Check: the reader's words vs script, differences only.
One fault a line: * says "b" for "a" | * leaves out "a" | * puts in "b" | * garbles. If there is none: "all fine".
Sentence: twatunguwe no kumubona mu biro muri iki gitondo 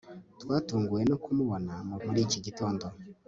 * leaves out "biro"